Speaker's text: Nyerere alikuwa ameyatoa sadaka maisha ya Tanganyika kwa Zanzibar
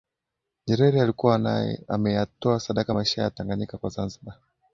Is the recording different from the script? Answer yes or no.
no